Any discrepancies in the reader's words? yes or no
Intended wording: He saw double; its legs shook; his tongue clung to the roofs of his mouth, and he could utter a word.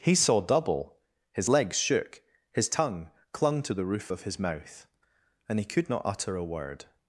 yes